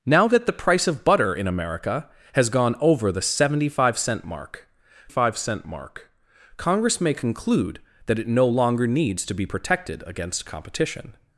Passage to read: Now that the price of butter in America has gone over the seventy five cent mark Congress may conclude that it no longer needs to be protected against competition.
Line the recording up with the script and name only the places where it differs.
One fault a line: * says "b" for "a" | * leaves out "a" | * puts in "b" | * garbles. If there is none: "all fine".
* puts in "five cent mark"